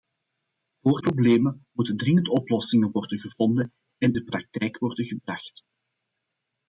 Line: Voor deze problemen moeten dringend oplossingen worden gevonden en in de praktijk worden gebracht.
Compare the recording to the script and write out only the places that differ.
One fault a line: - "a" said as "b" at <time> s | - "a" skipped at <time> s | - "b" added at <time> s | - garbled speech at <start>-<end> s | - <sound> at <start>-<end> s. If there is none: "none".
- "deze" skipped at 1.0 s
- "in" skipped at 4.1 s